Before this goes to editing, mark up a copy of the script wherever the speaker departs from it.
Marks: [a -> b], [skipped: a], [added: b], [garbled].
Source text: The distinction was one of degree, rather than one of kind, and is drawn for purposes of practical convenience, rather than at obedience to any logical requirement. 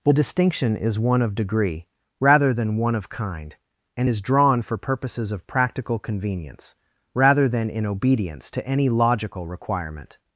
The distinction [was -> is] one of degree, rather than one of kind, and is drawn for purposes of practical convenience, rather than [at -> in] obedience to any logical requirement.